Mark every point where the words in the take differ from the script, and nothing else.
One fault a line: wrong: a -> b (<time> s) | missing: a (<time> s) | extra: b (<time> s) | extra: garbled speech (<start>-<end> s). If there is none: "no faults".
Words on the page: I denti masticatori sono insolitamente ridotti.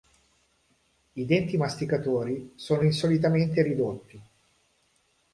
no faults